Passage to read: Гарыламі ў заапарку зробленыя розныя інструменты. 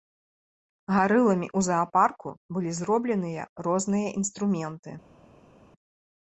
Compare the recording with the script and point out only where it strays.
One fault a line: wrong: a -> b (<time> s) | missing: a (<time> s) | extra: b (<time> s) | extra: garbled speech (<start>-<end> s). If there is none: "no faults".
extra: былі (2.6 s)